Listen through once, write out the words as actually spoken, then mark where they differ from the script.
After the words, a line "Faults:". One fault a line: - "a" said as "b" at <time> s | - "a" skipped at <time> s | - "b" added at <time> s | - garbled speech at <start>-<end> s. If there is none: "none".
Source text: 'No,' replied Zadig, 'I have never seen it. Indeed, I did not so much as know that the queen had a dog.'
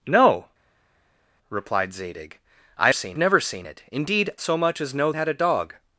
'No,' replied Zadig, 'I seen never seen it. Indeed, so much as know had a dog.'
Faults:
- "have" said as "seen" at 2.9 s
- "I did not" skipped at 4.3 s
- "that the queen" skipped at 5.1 s